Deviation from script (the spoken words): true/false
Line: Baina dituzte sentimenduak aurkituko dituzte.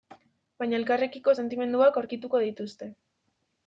true